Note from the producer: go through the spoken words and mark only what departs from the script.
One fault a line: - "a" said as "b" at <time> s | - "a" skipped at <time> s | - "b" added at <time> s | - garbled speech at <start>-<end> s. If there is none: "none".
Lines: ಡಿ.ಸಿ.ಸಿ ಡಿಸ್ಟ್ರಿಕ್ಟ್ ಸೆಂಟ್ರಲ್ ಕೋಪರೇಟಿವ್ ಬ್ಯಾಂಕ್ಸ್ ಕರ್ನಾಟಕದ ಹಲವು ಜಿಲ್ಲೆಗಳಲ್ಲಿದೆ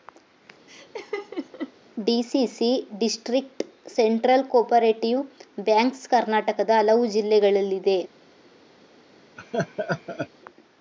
none